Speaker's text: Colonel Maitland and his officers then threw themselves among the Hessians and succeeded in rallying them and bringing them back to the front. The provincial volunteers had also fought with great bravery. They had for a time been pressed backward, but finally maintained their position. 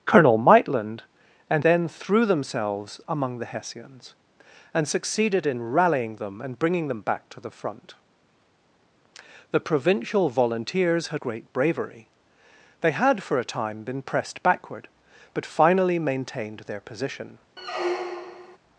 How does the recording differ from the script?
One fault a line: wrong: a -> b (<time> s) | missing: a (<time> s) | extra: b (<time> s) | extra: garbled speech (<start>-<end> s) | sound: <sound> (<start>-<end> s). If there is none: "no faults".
missing: his officers (1.6 s)
missing: also fought with (11.2 s)
sound: squeak (17.6-18.6 s)